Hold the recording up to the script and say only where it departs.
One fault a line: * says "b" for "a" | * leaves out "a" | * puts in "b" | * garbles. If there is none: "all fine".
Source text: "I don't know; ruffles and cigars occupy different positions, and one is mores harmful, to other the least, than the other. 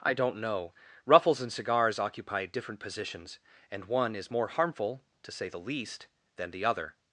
* says "more" for "mores"
* says "say" for "other"